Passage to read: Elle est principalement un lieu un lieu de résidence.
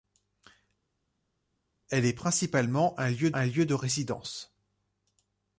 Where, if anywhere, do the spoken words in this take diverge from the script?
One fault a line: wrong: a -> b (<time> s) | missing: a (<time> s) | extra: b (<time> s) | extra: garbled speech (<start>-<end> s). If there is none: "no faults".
no faults